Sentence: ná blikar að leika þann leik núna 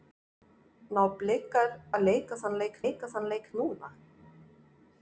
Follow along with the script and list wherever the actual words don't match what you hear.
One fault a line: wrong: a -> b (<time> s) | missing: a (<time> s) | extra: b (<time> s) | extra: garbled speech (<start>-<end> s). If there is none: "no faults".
extra: leika þann leik (2.8 s)